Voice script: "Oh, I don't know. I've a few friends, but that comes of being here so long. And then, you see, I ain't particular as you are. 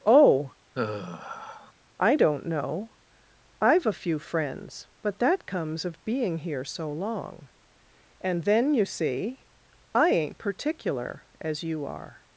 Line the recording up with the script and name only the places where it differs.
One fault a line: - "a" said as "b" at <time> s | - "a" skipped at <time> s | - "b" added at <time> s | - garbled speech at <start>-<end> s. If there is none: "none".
none